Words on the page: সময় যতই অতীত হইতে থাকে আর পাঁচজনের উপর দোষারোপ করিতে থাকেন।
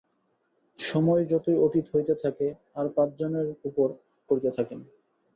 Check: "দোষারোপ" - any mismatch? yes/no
yes